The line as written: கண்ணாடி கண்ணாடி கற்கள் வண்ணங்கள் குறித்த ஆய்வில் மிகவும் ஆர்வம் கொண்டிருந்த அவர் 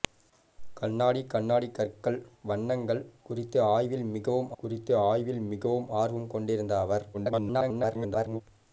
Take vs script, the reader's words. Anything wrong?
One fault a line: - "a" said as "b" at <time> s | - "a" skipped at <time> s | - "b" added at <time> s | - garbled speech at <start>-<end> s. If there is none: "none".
- "குறித்த ஆய்வில் மிகவும்" added at 4.6 s
- garbled speech at 7.1-8.4 s